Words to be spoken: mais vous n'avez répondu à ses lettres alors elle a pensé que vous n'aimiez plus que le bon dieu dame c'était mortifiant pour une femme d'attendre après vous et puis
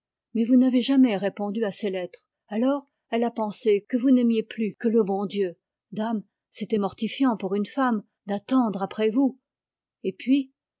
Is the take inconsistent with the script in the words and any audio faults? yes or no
yes